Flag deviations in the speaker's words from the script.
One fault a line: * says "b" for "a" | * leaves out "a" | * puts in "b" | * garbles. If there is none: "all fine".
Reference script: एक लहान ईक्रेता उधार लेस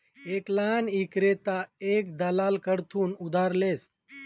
* puts in "एक दलाल कडथून"